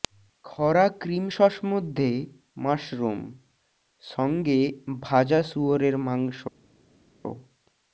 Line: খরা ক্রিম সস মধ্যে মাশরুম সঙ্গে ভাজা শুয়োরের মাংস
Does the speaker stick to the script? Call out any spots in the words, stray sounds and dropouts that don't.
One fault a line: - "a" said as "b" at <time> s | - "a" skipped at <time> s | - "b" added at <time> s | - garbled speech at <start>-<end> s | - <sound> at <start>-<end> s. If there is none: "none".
none